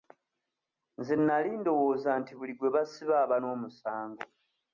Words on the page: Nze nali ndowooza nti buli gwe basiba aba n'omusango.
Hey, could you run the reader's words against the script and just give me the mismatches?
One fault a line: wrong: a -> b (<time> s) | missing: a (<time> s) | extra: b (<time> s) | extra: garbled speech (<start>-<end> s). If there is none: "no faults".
no faults